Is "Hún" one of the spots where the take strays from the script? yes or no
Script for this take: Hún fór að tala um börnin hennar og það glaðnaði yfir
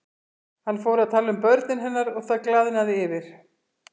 yes